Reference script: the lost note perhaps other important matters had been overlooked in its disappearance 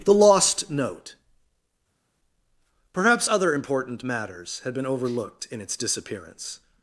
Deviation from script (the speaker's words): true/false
false